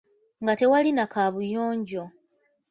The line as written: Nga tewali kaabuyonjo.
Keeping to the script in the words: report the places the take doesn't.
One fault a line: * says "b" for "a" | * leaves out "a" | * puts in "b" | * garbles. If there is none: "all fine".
* puts in "na"